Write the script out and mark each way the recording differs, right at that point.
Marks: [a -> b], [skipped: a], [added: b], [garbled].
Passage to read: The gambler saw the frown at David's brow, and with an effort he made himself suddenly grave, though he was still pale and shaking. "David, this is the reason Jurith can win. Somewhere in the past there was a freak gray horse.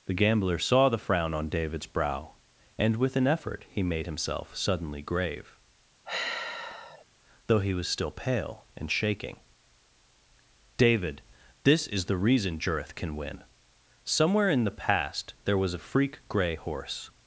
The gambler saw the frown [at -> on] David's brow, and with an effort he made himself suddenly grave, though he was still pale and shaking. "David, this is the reason Jurith can win. Somewhere in the past there was a freak gray horse.